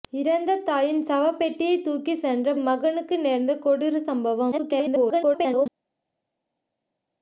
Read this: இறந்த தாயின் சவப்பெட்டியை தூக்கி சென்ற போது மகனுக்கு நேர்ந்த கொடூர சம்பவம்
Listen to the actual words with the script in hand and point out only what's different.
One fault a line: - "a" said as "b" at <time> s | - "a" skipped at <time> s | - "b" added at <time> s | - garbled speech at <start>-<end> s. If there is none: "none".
- "போது" skipped at 2.5 s
- garbled speech at 4.5-5.7 s